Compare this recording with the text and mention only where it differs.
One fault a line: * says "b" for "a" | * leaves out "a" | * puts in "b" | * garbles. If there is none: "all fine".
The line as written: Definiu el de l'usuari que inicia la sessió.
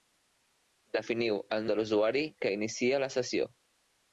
all fine